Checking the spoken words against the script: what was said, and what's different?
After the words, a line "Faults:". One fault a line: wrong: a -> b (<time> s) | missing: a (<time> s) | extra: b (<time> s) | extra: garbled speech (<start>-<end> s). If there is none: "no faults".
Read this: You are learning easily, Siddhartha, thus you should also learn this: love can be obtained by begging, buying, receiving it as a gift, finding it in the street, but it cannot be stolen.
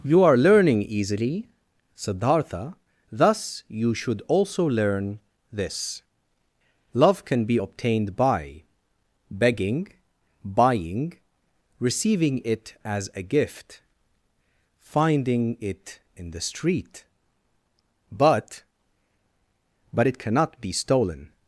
You are learning easily, Siddhartha, thus you should also learn this: love can be obtained by begging, buying, receiving it as a gift, finding it in the street, but but it cannot be stolen.
Faults:
extra: but (19.9 s)